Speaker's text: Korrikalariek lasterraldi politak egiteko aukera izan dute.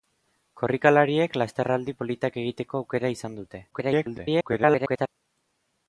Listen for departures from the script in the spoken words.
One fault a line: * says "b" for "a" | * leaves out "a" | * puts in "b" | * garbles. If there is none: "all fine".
* garbles